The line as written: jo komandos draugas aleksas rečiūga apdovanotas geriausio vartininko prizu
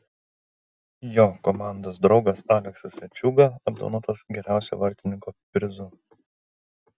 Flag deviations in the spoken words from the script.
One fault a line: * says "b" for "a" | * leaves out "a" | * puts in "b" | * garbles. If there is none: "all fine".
all fine